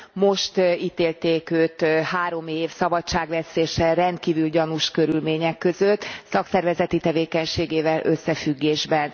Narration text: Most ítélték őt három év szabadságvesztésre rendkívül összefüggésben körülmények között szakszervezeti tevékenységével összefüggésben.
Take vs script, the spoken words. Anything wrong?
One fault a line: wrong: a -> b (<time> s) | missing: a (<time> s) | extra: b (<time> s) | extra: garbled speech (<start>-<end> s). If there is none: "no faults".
wrong: összefüggésben -> gyanús (4.5 s)